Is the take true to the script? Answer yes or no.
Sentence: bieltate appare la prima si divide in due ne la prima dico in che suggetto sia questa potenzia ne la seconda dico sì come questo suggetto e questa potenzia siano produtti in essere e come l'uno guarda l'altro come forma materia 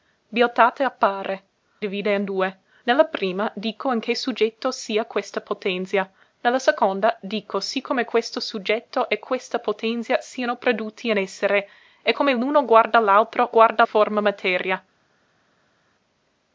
no